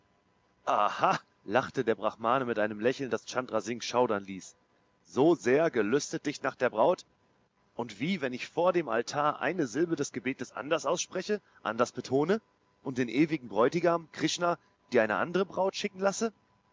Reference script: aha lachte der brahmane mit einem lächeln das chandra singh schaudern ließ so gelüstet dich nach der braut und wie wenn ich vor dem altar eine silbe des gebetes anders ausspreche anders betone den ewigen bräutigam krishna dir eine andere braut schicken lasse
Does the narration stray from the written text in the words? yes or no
yes